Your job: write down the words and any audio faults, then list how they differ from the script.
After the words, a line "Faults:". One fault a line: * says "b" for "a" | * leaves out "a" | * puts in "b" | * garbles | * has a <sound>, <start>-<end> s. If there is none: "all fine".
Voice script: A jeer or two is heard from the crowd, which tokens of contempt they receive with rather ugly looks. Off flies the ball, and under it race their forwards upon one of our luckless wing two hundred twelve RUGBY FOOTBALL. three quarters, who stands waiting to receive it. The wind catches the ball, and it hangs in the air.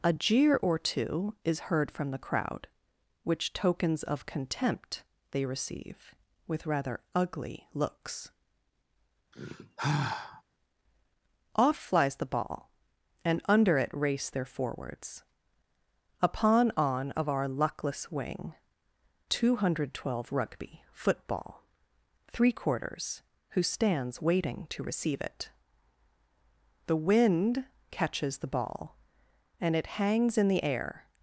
A jeer or two is heard from the crowd, which tokens of contempt they receive with rather ugly looks. Off flies the ball, and under it race their forwards upon on of our luckless wing two hundred twelve RUGBY FOOTBALL. three quarters, who stands waiting to receive it. The wind catches the ball, and it hangs in the air.
Faults:
* has a sigh, 9.3-10.4 s
* says "on" for "one"